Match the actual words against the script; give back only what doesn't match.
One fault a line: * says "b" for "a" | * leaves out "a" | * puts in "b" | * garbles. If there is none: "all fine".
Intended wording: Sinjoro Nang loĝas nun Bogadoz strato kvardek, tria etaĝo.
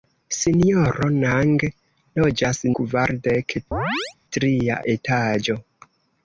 * leaves out "nun Bogadoz strato"